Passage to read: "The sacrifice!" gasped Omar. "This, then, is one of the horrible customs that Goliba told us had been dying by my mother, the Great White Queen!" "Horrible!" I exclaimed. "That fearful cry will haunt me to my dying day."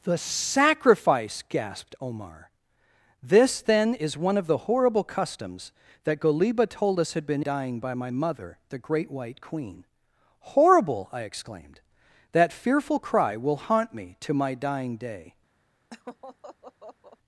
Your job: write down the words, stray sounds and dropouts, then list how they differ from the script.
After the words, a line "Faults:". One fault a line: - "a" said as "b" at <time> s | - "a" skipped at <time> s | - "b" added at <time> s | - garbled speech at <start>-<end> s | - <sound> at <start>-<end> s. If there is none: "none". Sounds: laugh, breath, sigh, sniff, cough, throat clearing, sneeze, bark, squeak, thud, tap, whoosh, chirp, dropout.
"The sacrifice!" gasped Omar. "This, then, is one of the horrible customs that Goliba told us had been dying by my mother, the Great White Queen!" "Horrible!" I exclaimed. "That fearful cry will haunt me to my dying day."
Faults:
- laugh at 15.9-17.2 s